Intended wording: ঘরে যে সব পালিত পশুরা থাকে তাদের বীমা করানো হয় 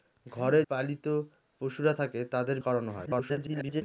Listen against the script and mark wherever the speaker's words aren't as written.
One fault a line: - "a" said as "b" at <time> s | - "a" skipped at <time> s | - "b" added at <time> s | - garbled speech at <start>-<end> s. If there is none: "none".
- "যে সব" skipped at 0.6 s
- "বীমা" skipped at 2.6 s
- garbled speech at 3.1-3.8 s